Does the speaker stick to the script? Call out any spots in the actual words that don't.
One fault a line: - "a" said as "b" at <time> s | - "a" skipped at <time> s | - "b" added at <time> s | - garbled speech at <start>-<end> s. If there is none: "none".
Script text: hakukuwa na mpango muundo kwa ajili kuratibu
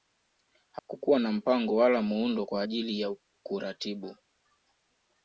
- "wala" added at 1.8 s
- "ya" added at 3.0 s